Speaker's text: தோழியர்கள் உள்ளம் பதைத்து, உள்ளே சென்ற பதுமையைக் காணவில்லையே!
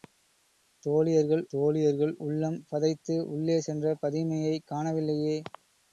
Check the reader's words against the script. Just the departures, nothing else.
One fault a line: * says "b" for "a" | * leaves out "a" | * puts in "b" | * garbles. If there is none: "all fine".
* puts in "தோழியர்கள்"